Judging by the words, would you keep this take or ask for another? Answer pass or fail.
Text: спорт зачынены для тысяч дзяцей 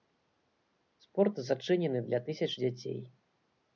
pass